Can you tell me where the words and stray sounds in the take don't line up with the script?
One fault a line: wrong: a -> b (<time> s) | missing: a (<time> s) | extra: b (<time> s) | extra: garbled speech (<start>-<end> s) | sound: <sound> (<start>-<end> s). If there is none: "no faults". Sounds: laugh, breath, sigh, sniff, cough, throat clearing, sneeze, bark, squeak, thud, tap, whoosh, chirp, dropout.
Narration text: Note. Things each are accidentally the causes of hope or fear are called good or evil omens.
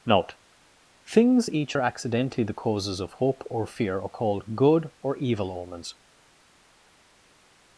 no faults